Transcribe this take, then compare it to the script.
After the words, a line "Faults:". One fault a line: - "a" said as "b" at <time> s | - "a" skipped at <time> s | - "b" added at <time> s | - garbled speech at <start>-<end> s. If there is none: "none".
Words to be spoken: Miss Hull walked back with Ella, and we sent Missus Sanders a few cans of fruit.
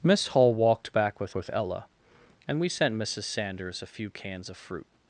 Miss Hull walked back with with Ella, and we sent Missus Sanders a few cans of fruit.
Faults:
- "with" added at 1.3 s